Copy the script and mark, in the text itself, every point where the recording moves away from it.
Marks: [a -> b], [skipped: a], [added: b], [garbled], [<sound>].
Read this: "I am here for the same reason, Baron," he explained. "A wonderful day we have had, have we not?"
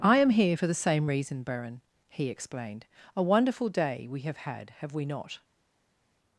"I am here for the same reason, Baron," he explained. "A wonderful day we have had, have we not?"